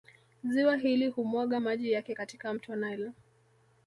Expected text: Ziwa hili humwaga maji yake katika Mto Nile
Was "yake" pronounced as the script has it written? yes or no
yes